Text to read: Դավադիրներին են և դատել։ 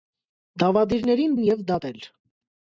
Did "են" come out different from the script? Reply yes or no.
no